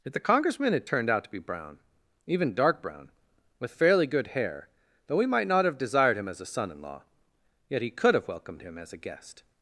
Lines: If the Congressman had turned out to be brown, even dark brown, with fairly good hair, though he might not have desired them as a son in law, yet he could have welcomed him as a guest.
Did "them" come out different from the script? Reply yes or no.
yes